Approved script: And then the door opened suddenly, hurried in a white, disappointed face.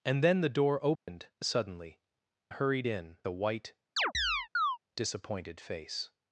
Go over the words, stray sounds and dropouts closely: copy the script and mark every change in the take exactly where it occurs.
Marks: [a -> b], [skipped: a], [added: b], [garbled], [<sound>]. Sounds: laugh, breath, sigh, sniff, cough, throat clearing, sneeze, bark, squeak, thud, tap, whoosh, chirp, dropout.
And then the door opened [dropout] suddenly, hurried in a white, [chirp] disappointed face.